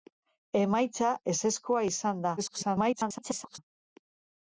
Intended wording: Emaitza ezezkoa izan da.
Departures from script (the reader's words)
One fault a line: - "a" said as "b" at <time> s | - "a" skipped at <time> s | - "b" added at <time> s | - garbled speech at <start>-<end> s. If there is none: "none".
- garbled speech at 2.4-3.6 s